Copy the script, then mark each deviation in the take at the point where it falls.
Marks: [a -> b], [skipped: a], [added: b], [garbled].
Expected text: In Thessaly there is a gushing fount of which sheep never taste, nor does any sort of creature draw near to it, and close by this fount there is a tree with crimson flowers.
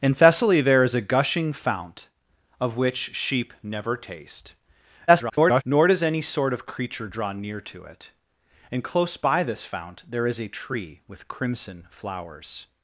In Thessaly there is a gushing fount of which sheep never taste, [garbled] nor does any sort of creature draw near to it, and close by this fount there is a tree with crimson flowers.